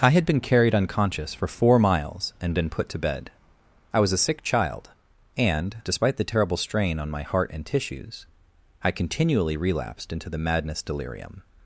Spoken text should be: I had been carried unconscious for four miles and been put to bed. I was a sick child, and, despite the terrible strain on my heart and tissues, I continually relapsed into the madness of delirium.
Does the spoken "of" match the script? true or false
false